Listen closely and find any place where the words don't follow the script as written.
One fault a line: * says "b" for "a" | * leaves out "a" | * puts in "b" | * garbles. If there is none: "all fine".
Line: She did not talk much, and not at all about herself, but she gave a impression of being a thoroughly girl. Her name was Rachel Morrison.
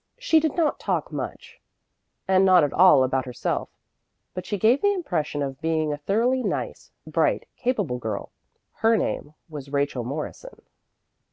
* says "the" for "a"
* puts in "nice bright capable"